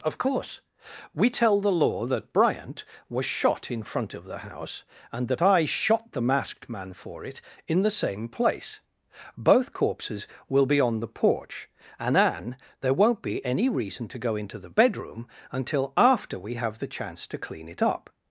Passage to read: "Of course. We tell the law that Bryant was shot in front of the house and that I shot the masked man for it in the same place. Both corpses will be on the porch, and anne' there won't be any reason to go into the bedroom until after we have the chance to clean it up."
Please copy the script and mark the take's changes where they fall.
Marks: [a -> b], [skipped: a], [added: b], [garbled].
"Of course. We tell the law that Bryant was shot in front of the house and that I shot the masked man for it in the same place. Both corpses will be on the porch, and anne' there won't be any reason to go into the bedroom until after we have the chance to clean it up."